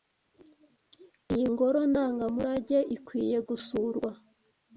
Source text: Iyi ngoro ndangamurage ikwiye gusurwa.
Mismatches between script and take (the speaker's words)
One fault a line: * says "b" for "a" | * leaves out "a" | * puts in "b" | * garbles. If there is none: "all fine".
all fine